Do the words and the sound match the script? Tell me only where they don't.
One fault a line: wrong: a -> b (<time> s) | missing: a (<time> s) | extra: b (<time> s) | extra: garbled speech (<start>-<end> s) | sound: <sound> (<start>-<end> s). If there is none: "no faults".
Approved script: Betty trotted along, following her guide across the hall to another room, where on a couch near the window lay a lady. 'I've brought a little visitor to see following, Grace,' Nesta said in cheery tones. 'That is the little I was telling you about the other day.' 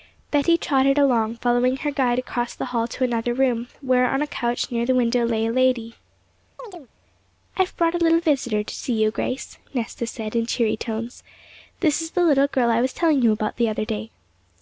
sound: chirp (6.6-6.9 s)
wrong: following -> you (8.9 s)
wrong: That -> This (11.8 s)
extra: girl (12.5 s)